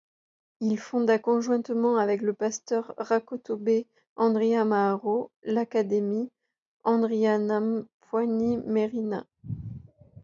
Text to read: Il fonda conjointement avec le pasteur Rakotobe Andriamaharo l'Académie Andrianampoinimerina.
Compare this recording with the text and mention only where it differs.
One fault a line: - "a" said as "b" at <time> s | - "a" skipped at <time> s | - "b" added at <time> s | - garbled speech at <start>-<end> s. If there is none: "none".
none